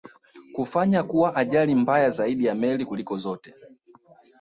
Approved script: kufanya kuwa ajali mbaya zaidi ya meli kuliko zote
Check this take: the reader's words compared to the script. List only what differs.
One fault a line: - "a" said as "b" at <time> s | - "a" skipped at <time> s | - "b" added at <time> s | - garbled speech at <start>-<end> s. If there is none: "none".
none